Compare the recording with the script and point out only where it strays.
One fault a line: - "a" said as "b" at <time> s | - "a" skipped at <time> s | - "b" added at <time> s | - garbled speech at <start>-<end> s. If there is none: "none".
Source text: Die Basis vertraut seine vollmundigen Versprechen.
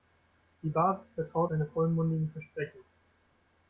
none